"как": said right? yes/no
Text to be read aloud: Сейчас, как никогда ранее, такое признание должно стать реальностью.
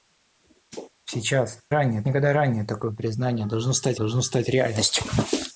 no